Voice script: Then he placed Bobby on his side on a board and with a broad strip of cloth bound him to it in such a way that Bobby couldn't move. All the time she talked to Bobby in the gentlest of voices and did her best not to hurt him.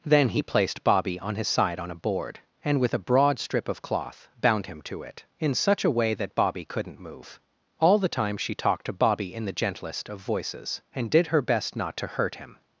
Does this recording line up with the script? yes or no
yes